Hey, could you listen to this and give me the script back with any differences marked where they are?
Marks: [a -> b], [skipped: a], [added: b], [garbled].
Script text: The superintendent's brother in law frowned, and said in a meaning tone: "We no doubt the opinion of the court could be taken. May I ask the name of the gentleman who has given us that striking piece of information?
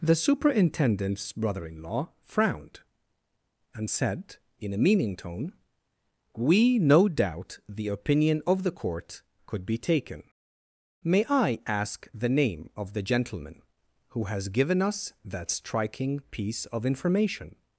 The superintendent's brother in law frowned, and said in a meaning tone: "We no doubt the opinion of the court could be taken. May I ask the name of the gentleman who has given us that striking piece of information?